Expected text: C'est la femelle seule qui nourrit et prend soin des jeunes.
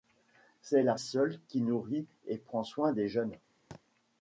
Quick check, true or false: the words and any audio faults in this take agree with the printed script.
false